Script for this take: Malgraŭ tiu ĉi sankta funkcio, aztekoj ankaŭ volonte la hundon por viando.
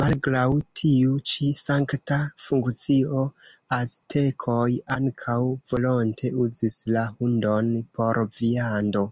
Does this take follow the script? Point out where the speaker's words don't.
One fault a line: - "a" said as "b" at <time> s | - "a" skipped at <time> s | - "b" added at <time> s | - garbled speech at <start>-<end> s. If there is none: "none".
- "uzis" added at 6.4 s